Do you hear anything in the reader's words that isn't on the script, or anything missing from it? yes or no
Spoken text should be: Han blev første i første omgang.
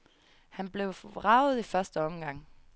yes